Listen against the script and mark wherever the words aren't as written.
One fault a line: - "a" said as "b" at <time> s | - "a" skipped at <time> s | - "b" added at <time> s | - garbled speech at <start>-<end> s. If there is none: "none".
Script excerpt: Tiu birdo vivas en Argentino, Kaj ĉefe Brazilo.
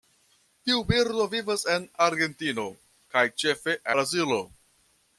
none